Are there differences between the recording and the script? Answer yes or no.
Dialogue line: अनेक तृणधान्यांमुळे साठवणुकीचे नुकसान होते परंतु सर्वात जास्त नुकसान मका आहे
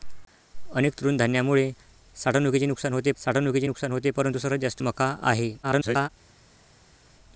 yes